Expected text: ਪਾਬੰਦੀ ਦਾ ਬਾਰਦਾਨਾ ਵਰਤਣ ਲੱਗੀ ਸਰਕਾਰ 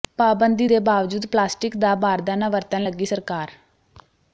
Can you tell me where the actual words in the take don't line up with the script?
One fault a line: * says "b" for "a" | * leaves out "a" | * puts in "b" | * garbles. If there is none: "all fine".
* puts in "ਦੇ ਬਾਵਜੂਦ ਪਲਾਸਟਿਕ"